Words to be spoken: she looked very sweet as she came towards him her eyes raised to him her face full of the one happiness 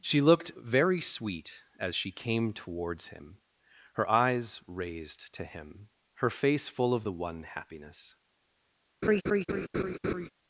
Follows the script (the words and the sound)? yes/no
no